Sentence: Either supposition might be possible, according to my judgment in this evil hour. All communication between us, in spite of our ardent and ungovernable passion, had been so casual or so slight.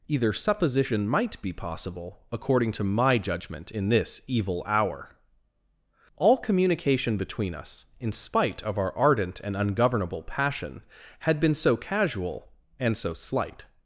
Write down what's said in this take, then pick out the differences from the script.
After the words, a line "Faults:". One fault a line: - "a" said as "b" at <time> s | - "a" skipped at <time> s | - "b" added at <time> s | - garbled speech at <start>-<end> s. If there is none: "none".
Either supposition might be possible, according to my judgment in this evil hour. All communication between us, in spite of our ardent and ungovernable passion, had been so casual and so slight.
Faults:
- "or" said as "and" at 12.8 s